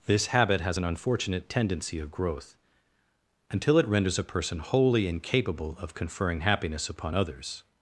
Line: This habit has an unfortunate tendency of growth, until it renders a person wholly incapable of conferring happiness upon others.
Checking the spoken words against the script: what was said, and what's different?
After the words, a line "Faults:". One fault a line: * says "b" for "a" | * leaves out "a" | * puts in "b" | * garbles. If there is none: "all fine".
This habit has an unfortunate tendency of growth, until it renders a person wholly incapable of conferring happiness upon others.
Faults:
all fine